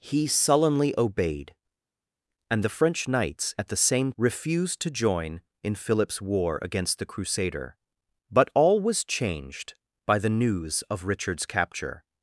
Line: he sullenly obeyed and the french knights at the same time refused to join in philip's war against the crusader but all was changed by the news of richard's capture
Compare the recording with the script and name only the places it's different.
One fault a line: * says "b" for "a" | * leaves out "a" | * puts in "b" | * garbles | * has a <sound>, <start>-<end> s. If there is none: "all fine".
* leaves out "time"